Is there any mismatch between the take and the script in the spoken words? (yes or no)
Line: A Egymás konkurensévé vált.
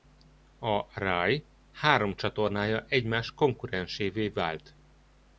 yes